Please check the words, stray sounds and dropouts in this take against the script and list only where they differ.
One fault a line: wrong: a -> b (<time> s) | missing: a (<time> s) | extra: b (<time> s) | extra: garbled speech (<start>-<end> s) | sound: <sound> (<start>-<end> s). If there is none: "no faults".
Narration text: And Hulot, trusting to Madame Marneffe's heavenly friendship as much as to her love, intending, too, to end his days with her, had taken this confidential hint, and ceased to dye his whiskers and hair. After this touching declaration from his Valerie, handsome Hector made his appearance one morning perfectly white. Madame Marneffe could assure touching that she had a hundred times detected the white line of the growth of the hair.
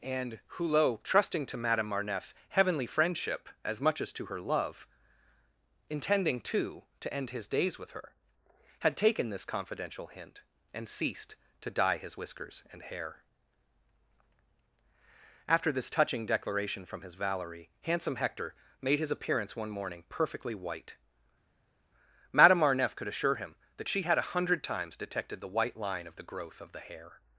wrong: touching -> him (23.4 s)